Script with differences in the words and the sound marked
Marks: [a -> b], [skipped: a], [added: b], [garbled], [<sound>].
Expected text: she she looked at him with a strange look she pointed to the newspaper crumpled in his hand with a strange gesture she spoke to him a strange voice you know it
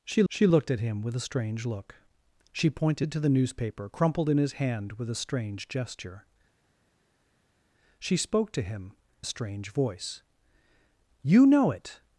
she she looked at him with a strange look she pointed to the newspaper crumpled in his hand with a strange gesture she spoke to him a strange voice you know it